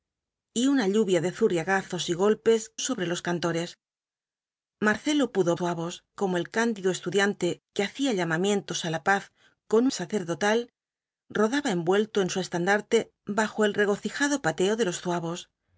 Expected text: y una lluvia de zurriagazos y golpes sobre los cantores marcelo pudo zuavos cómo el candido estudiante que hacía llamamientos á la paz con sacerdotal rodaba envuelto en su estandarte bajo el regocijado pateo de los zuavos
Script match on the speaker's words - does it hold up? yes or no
yes